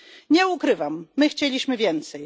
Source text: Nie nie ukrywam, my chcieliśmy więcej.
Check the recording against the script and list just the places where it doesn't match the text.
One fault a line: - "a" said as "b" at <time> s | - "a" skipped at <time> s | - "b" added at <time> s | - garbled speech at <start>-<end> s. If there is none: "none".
- "nie" skipped at 0.5 s